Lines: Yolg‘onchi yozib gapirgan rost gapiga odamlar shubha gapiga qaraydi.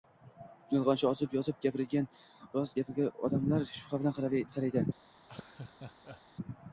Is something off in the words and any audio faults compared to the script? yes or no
yes